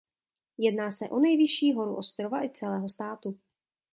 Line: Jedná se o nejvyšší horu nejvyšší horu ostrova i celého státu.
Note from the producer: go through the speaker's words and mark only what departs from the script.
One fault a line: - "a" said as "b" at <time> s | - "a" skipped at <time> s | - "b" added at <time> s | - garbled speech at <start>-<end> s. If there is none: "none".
- "nejvyšší horu" skipped at 1.9 s